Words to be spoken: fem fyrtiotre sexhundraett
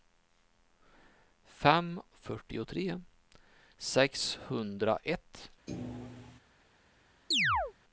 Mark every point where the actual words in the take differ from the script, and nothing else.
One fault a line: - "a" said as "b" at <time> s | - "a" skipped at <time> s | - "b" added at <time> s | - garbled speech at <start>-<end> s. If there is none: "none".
none